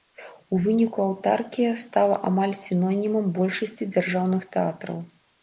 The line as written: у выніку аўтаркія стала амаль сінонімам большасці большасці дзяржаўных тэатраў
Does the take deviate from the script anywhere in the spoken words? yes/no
yes